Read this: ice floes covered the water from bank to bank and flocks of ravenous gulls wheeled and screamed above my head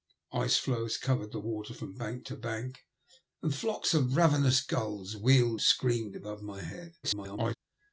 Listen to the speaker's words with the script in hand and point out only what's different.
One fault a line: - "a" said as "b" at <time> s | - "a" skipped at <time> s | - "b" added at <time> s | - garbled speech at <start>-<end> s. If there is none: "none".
- "and" skipped at 5.6 s
- garbled speech at 7.0-7.5 s